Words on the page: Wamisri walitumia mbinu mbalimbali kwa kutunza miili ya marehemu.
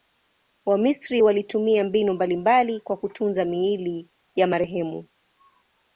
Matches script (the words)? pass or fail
pass